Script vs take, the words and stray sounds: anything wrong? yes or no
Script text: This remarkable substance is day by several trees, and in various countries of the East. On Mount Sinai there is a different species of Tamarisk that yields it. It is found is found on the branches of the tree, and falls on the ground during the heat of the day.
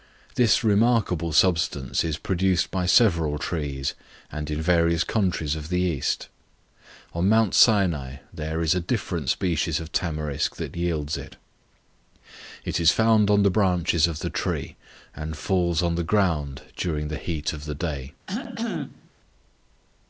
yes